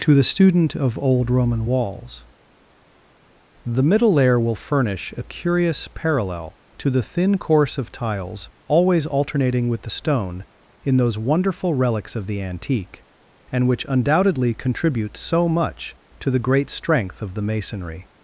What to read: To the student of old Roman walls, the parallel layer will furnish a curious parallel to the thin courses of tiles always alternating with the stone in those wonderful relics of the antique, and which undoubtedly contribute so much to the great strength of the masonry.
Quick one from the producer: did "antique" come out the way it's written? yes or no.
yes